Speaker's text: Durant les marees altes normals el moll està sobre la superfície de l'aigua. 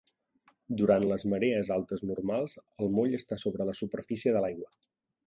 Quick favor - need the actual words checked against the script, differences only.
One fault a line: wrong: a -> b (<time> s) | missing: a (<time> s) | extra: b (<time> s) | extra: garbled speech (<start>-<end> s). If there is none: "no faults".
no faults